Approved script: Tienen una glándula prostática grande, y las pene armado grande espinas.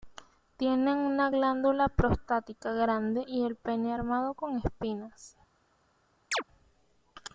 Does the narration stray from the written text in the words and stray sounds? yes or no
yes